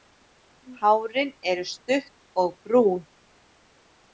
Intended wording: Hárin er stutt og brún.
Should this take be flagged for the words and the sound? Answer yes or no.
no